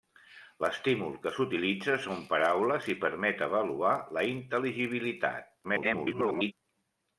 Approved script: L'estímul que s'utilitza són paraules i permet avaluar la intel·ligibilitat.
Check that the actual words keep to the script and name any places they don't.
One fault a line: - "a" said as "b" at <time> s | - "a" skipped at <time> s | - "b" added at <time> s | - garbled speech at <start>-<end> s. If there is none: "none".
- garbled speech at 5.6-6.5 s